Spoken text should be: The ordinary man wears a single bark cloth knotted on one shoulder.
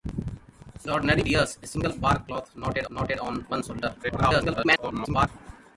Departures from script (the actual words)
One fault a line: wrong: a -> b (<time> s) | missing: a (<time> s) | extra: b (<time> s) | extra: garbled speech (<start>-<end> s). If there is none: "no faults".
missing: man (1.2 s)
extra: knotted (2.9 s)
extra: garbled speech (4.0-5.3 s)